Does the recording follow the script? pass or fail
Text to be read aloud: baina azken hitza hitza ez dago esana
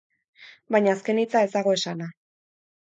fail